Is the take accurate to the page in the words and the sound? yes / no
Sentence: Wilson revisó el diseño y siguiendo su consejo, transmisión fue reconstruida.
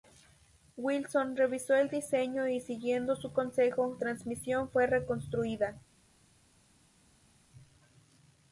yes